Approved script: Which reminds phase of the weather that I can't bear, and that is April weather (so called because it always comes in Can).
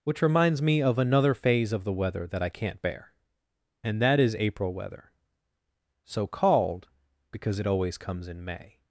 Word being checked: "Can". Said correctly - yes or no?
no